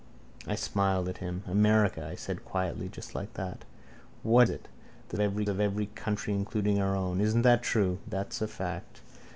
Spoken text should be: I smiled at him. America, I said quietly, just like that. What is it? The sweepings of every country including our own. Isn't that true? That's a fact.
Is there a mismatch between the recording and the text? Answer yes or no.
yes